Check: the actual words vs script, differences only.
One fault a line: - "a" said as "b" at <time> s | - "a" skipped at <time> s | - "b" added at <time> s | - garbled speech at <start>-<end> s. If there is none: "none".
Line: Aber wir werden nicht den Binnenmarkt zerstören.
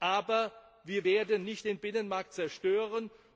none